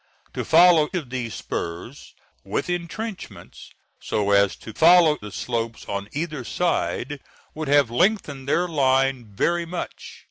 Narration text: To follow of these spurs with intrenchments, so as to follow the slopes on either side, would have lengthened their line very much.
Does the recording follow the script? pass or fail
pass